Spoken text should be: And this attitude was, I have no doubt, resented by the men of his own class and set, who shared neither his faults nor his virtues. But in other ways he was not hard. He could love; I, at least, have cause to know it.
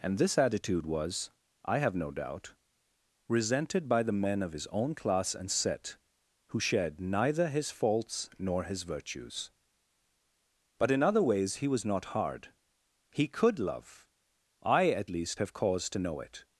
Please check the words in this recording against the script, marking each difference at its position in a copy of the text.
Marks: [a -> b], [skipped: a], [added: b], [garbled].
And this attitude was, I have no doubt, resented by the men of his own class and set, who shared neither his faults nor his virtues. But in other ways he was not hard. He could love; I, at least, have cause to know it.